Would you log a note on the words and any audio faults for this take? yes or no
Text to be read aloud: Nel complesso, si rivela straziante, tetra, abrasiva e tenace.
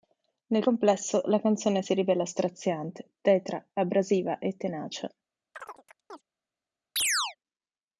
yes